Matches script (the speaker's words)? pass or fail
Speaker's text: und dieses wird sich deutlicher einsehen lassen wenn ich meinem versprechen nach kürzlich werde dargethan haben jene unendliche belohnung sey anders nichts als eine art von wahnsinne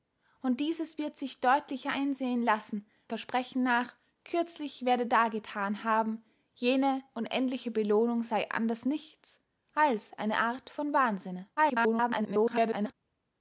fail